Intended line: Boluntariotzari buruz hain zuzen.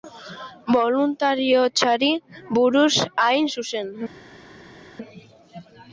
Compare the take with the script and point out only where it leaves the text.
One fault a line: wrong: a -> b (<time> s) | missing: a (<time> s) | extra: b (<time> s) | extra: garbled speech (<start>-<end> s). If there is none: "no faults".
no faults